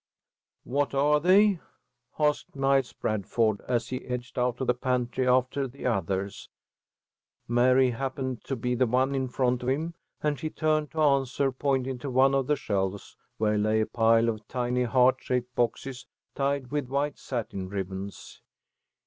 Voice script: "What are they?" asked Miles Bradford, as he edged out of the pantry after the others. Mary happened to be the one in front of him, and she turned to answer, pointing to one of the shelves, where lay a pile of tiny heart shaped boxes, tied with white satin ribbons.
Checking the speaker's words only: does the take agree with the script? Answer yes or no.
yes